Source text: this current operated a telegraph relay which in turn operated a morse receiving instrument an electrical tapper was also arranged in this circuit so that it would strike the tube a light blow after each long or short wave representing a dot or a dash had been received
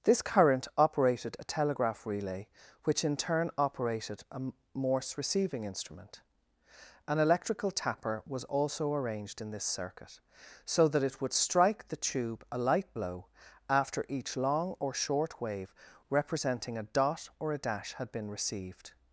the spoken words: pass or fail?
pass